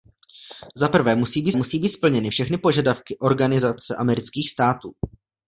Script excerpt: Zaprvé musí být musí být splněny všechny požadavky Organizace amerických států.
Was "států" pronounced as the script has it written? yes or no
yes